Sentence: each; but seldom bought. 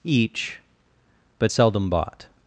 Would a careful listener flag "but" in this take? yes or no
no